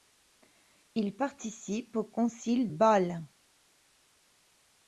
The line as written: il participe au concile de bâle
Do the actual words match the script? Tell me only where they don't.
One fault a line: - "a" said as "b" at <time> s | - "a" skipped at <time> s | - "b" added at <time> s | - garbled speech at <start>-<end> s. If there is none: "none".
- "de" skipped at 2.7 s